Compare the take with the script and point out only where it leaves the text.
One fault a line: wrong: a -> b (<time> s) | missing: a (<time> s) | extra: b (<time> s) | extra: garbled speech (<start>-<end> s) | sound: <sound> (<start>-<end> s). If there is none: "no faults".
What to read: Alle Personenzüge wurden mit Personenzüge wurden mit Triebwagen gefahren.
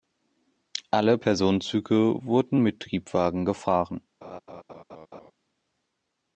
missing: Personenzüge wurden mit (2.8 s)
sound: laugh (4.2-5.3 s)